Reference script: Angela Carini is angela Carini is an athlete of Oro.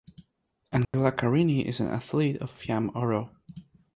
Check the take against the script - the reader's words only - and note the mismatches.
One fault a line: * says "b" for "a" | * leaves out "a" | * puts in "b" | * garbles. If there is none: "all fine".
* leaves out "angela Carini is"
* puts in "Fiamme"